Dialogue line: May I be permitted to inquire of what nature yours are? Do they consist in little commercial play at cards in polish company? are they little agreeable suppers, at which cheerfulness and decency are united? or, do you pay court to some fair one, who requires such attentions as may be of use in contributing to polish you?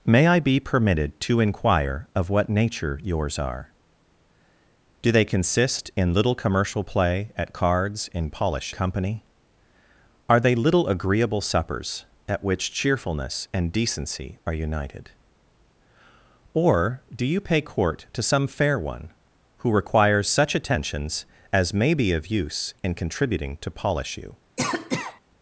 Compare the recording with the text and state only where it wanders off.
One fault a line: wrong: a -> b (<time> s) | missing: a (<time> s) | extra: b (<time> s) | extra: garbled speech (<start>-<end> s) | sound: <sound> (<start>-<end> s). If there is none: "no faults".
sound: cough (24.6-25.2 s)